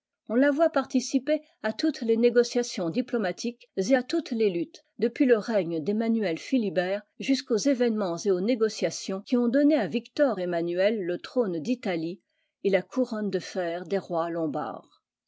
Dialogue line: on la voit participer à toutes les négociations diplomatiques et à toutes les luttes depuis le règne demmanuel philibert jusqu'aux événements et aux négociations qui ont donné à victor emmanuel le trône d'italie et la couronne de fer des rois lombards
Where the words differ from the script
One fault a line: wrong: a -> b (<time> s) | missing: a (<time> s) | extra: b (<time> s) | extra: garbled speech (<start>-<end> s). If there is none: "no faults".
no faults